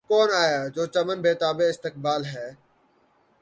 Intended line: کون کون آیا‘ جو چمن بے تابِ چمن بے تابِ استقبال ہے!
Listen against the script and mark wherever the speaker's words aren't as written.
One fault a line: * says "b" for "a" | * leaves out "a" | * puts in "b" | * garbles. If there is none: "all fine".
* leaves out "کون"
* leaves out "چمن بے تابِ"